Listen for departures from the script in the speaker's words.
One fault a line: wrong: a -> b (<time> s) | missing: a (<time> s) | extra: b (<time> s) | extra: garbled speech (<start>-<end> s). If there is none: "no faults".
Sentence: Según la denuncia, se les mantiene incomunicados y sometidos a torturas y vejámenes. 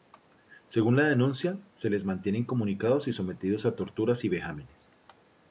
no faults